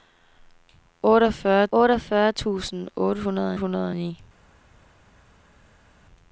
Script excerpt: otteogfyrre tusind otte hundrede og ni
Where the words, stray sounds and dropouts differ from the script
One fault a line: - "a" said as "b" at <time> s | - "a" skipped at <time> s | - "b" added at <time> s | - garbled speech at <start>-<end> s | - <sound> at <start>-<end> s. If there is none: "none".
- "otteogfyrre" added at 1.8 s
- "hundrede" added at 3.6 s